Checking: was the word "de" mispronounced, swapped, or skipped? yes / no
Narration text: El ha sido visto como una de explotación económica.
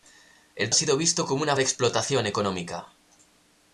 no